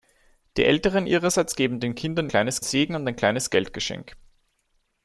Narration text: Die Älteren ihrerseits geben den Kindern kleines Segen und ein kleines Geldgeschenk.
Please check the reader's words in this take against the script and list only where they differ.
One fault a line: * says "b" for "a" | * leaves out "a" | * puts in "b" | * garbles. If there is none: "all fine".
all fine